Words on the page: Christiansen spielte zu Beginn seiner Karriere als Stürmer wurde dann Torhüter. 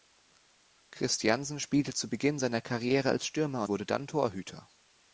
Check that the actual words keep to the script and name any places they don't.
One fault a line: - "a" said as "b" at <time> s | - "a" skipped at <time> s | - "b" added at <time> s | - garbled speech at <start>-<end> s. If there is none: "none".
none